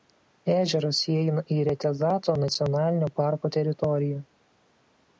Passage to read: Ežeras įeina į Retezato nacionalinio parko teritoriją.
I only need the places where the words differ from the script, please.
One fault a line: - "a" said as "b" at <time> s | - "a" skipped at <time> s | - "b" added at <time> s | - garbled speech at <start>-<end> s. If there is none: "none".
none